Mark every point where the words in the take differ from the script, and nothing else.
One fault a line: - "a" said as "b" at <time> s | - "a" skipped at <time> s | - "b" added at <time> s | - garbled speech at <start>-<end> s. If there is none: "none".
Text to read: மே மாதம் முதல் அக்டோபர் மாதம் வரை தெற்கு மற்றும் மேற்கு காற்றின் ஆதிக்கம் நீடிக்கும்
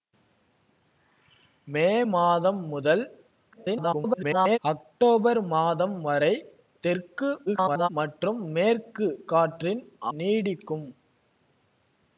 - garbled speech at 3.5-4.6 s
- garbled speech at 7.5-7.9 s
- "ஆதிக்கம்" skipped at 9.8 s